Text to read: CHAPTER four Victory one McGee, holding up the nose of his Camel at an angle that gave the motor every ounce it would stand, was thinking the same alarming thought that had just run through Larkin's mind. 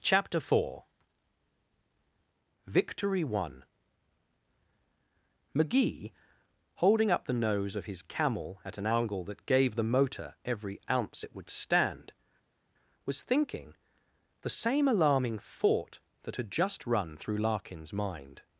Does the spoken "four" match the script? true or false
true